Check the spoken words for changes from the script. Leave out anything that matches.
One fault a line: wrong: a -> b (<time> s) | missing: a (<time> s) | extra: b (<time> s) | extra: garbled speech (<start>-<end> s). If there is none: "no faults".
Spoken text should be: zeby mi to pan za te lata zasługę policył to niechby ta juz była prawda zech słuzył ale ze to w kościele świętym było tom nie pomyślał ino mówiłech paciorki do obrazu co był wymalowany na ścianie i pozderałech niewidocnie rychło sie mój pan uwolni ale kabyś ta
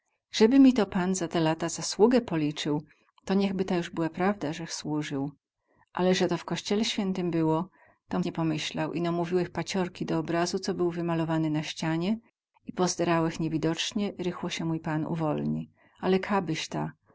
no faults